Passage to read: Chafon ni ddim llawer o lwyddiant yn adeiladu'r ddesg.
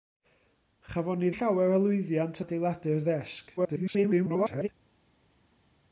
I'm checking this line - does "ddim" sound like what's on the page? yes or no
no